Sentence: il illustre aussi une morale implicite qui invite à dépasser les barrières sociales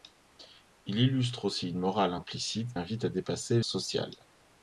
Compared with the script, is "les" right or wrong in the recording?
wrong